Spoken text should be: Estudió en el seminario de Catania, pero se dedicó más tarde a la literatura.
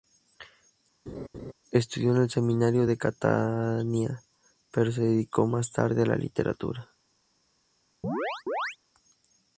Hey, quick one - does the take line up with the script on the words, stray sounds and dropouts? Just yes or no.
no